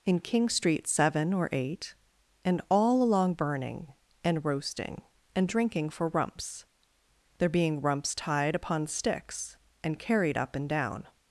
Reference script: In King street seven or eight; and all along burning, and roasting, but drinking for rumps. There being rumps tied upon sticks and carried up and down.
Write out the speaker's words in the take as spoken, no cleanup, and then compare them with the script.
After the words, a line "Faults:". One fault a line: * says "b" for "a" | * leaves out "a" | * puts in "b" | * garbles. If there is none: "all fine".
In King street seven or eight; and all along burning, and roasting, and drinking for rumps. There being rumps tied upon sticks and carried up and down.
Faults:
* says "and" for "but"